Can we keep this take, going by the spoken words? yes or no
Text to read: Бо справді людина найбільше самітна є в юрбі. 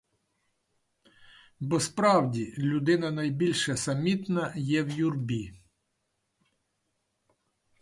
yes